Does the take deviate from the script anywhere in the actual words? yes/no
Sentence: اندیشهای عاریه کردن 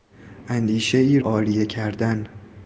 no